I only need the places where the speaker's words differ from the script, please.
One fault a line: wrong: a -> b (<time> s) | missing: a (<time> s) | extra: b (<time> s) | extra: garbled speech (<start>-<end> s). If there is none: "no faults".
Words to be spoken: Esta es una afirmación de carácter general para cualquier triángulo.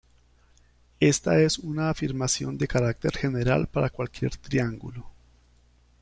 no faults